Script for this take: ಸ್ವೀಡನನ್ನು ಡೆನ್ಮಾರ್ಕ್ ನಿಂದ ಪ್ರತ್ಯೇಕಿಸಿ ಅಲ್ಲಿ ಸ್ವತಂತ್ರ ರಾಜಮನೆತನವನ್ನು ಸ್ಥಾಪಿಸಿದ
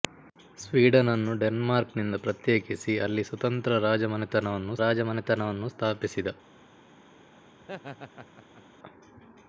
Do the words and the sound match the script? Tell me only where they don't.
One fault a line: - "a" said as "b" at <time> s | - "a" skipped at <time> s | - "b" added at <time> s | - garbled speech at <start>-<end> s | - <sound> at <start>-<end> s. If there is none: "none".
- "ರಾಜಮನೆತನವನ್ನು" added at 4.8 s
- laugh at 7.6-8.6 s